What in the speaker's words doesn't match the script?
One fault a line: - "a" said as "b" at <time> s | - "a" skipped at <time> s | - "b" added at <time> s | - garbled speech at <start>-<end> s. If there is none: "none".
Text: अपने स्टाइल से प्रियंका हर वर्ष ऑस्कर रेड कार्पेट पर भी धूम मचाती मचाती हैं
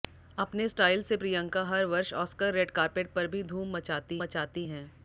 none